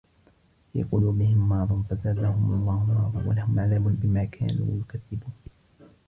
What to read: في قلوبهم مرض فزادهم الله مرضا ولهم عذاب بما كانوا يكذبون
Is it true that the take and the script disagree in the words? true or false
false